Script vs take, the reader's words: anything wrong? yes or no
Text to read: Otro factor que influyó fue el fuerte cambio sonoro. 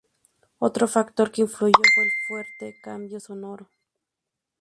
no